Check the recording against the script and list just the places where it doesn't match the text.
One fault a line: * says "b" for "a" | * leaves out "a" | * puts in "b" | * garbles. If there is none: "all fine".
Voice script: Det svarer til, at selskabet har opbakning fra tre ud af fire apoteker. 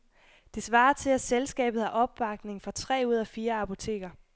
all fine